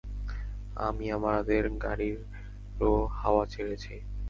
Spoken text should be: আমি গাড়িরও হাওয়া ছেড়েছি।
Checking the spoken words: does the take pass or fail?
fail